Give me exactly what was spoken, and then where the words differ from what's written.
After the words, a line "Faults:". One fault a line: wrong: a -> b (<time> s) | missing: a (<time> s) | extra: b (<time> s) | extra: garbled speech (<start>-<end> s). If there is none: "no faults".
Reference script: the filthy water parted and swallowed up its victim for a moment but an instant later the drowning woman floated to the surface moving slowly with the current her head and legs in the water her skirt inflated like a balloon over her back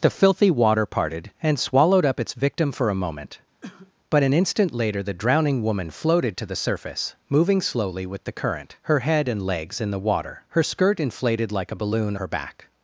the filthy water parted and swallowed up its victim for a moment but an instant later the drowning woman floated to the surface moving slowly with the current her head and legs in the water her skirt inflated like a balloon her back
Faults:
missing: over (12.2 s)